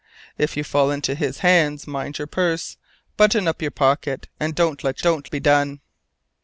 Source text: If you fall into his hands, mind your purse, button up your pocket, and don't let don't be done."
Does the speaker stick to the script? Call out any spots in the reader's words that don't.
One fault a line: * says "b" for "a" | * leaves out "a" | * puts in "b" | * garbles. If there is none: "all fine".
all fine